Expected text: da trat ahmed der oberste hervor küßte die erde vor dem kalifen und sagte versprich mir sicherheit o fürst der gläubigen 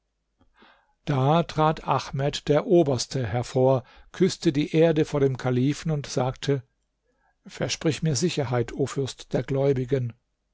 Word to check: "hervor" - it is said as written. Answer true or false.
true